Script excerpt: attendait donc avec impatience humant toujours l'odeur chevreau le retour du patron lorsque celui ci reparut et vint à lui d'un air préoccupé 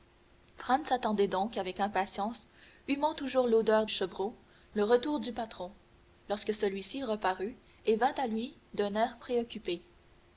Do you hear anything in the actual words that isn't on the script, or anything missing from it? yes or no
no